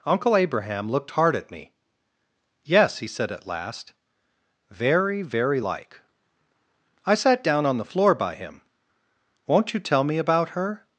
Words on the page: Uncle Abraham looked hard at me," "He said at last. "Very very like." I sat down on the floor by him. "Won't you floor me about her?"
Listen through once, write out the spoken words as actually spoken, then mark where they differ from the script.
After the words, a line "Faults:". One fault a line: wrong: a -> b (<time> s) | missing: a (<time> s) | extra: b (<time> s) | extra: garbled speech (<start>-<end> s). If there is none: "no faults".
Uncle Abraham looked hard at me. "Yes," he said at last. "Very very like." I sat down on the floor by him. "Won't you tell me about her?"
Faults:
extra: Yes (2.6 s)
wrong: floor -> tell (9.8 s)